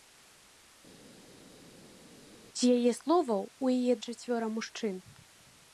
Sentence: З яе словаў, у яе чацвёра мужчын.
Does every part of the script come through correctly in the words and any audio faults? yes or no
yes